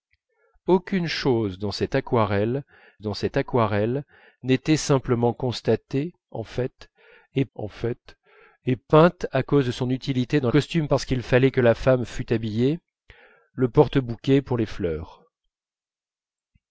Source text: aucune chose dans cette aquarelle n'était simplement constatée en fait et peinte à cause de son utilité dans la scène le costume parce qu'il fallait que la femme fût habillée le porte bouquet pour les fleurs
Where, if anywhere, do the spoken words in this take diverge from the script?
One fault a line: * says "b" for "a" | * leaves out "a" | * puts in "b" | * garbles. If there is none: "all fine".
* puts in "dans cette aquarelle"
* puts in "en fait et"
* leaves out "la scène le"